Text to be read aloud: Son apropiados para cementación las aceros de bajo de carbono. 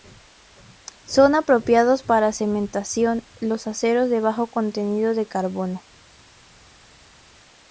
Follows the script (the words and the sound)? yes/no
no